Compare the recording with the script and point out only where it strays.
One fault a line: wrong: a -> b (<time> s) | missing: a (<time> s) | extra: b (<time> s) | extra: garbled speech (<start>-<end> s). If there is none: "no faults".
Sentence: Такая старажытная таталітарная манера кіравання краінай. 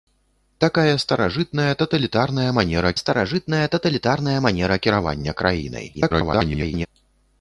extra: старажытная таталітарная манера (3.0 s)
extra: garbled speech (5.9-6.9 s)